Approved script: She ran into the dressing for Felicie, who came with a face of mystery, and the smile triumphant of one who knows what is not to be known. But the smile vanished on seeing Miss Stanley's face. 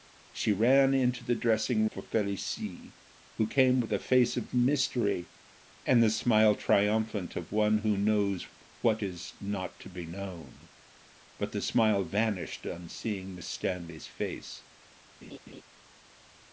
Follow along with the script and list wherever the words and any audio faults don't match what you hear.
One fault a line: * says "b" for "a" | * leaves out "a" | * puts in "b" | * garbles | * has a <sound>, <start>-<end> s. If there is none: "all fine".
* has a laugh, 15.2-15.6 s